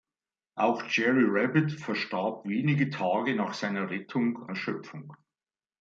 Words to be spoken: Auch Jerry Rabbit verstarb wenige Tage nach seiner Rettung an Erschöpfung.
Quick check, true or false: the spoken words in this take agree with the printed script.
false